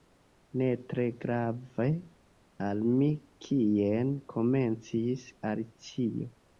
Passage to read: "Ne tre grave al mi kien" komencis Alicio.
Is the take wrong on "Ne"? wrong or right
right